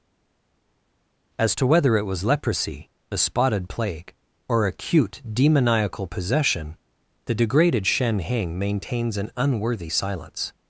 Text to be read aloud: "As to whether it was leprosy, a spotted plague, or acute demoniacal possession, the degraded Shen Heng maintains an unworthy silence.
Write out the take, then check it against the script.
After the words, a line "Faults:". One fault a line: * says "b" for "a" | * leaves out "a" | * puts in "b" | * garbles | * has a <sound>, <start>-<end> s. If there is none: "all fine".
"As to whether it was leprosy, a spotted plague, or acute demoniacal possession, the degraded Shen Heng maintains an unworthy silence.
Faults:
all fine